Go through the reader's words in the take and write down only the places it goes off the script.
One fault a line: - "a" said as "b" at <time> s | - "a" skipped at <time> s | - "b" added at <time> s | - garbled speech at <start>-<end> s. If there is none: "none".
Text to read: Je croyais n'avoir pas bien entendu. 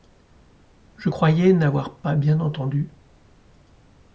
none